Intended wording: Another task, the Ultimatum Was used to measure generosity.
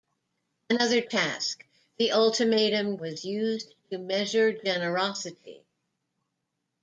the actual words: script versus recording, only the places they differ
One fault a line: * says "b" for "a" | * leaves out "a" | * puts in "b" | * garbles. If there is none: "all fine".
all fine